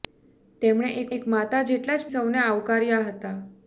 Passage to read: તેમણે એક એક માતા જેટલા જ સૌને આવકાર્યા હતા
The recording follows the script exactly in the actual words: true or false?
true